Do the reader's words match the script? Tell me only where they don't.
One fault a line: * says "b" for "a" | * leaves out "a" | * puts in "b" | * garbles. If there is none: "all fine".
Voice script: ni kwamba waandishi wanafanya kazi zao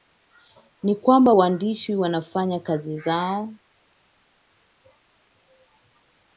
all fine